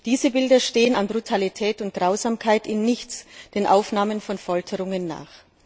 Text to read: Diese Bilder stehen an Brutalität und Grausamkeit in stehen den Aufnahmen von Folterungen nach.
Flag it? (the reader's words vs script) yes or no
yes